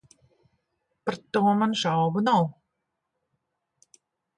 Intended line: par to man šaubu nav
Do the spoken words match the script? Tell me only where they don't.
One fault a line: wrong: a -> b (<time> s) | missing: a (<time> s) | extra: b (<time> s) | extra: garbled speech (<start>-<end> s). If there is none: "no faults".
no faults